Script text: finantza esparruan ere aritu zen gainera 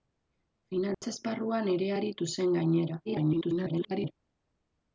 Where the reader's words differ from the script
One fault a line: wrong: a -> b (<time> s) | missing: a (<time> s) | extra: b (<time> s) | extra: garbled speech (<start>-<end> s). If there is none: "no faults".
extra: garbled speech (3.0-4.1 s)